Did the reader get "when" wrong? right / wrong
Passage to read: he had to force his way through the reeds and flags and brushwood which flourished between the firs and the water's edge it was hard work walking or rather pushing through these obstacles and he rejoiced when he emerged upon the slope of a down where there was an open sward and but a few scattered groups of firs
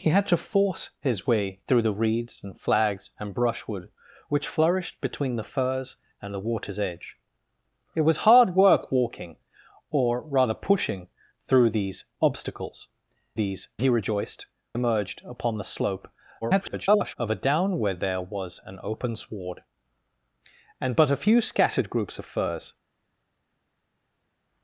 wrong